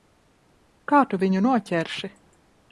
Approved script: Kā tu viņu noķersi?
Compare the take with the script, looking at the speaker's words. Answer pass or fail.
pass